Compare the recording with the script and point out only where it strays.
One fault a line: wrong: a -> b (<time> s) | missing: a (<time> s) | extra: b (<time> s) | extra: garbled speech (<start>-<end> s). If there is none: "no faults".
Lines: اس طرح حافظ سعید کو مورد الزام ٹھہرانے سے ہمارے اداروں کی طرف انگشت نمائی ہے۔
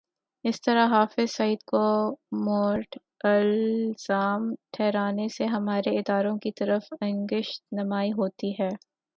extra: ہوتی (8.1 s)